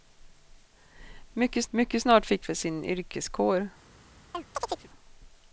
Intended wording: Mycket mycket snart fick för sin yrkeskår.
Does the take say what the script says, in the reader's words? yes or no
yes